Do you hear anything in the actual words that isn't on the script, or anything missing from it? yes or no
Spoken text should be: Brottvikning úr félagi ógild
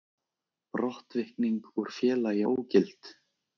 no